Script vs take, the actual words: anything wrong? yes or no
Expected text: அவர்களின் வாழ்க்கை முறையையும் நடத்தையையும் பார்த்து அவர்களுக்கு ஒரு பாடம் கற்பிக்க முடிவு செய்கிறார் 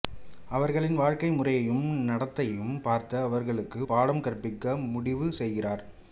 yes